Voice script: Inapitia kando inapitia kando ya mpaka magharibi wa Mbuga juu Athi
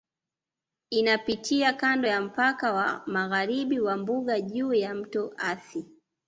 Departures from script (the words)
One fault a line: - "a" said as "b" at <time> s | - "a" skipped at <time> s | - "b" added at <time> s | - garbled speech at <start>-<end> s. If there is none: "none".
- "inapitia kando" skipped at 2.1 s
- "wa" added at 2.7 s
- "ya Mto" added at 4.7 s